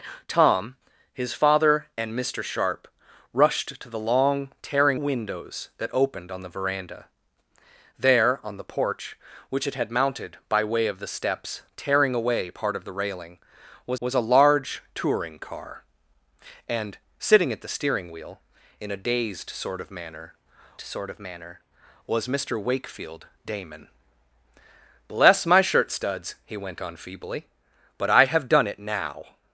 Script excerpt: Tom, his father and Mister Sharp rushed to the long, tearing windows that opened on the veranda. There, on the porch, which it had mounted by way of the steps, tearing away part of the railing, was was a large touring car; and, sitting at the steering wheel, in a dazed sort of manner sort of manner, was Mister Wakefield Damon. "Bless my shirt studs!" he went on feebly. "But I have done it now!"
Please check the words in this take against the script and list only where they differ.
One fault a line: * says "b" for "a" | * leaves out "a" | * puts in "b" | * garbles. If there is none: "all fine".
all fine